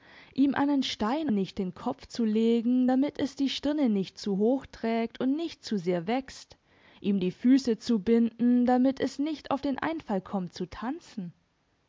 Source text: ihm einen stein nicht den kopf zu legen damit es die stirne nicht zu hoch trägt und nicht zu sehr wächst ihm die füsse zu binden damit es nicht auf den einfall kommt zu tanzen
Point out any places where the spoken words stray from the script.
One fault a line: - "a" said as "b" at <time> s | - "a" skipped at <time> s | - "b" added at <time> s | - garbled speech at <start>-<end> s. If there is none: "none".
none